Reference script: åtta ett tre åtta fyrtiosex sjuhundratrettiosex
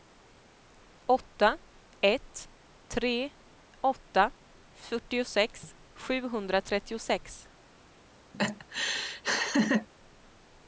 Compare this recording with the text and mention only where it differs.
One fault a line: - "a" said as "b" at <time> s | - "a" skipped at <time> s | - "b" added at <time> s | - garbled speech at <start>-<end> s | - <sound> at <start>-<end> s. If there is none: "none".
- laugh at 8.3-9.9 s